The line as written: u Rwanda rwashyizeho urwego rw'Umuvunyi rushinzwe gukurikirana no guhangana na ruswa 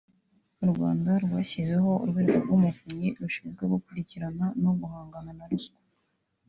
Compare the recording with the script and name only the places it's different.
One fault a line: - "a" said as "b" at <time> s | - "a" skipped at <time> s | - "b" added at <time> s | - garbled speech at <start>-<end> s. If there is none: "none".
none